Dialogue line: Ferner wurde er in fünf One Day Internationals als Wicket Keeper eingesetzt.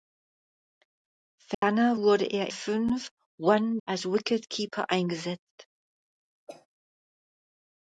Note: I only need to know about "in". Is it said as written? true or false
false